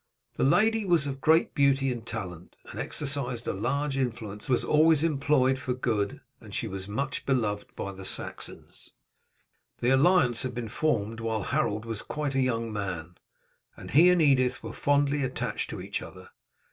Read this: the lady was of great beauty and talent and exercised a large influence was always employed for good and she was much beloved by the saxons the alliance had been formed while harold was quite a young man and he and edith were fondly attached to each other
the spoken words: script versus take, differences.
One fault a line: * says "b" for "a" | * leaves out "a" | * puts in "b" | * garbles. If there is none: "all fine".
all fine